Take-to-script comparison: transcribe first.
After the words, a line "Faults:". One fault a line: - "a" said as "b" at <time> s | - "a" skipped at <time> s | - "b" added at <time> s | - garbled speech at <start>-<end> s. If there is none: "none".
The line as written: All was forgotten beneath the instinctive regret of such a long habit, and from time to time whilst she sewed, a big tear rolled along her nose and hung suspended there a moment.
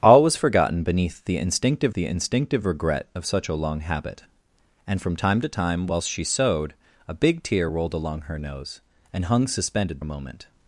All was forgotten beneath the instinctive the instinctive regret of such a long habit, and from time to time whilst she sewed, a big tear rolled along her nose and hung suspended a moment.
Faults:
- "the instinctive" added at 1.9 s
- "there" skipped at 10.0 s